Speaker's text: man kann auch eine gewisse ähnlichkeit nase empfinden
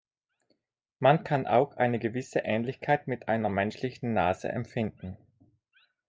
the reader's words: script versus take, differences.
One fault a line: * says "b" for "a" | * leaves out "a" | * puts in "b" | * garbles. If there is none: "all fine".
* puts in "mit einer menschlichen"